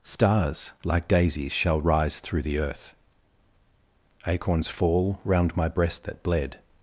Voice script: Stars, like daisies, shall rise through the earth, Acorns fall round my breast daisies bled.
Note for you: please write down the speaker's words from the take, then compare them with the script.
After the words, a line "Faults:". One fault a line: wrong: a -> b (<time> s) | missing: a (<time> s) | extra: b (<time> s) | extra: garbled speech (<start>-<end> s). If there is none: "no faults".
Stars, like daisies, shall rise through the earth, Acorns fall round my breast that bled.
Faults:
wrong: daisies -> that (6.0 s)